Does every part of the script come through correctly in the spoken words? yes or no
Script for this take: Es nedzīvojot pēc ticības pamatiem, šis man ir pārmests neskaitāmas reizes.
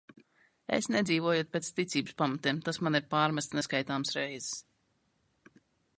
no